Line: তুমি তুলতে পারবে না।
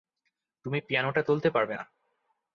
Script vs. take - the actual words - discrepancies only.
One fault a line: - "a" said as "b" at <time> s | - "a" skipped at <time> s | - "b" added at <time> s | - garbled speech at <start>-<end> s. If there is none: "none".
- "পিয়ানোটা" added at 0.8 s